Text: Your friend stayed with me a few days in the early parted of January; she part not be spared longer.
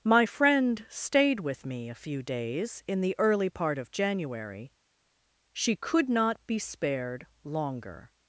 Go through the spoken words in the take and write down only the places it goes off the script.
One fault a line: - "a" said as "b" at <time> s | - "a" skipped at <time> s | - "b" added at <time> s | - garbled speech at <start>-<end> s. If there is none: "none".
- "Your" said as "My" at 0.0 s
- "parted" said as "part" at 3.5 s
- "part" said as "could" at 5.8 s